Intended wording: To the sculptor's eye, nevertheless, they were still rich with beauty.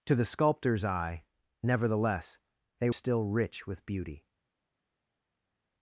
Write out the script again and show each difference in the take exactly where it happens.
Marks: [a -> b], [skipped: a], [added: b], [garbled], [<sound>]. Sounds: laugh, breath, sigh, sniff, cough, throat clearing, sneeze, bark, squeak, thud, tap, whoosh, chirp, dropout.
To the sculptor's eye, nevertheless, they [skipped: were] still rich with beauty.